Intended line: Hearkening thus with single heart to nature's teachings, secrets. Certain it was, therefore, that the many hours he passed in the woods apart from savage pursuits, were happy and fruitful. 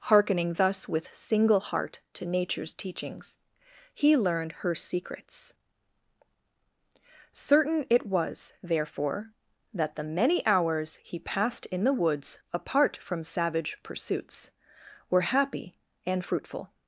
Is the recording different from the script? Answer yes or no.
yes